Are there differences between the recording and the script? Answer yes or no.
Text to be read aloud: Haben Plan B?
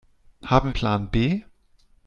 no